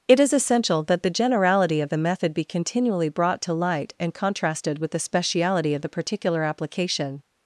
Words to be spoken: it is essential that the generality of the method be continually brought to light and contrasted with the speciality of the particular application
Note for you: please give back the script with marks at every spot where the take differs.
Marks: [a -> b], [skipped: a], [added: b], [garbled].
it is essential that the generality of the method be continually brought to light and contrasted with the speciality of the particular application